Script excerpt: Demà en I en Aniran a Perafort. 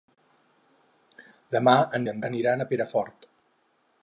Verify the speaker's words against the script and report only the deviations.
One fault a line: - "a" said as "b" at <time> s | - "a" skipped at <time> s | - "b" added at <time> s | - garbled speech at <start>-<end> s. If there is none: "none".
none